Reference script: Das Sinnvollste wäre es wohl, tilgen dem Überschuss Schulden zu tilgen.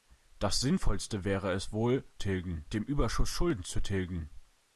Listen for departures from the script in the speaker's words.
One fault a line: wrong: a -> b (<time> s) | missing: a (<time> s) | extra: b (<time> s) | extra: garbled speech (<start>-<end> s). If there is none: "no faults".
no faults